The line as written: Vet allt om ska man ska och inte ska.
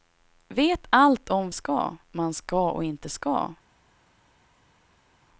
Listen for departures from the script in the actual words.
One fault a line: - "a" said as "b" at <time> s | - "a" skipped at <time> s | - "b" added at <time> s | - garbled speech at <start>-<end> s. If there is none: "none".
none